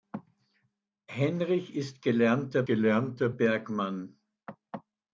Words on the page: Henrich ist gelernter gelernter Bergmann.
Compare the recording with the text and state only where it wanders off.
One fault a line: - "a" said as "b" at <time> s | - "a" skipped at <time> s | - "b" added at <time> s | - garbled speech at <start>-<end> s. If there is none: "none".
none